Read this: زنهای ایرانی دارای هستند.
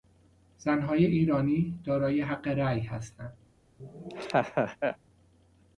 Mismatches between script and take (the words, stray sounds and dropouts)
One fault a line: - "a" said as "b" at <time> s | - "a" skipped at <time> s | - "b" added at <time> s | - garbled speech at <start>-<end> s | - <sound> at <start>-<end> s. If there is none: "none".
- "حق رای" added at 2.2 s
- laugh at 3.8-5.0 s